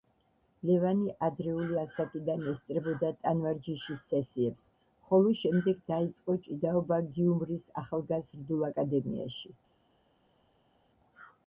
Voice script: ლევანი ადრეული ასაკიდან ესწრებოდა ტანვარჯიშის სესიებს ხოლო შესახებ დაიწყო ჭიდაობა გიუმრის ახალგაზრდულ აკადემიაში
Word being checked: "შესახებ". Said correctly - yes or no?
no